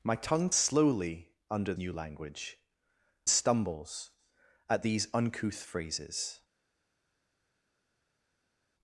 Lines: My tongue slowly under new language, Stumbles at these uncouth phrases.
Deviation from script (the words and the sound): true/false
false